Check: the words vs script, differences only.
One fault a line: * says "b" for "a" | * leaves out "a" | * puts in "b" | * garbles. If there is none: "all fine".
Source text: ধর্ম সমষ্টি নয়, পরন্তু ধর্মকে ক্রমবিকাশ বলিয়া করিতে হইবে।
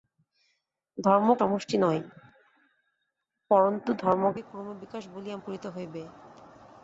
all fine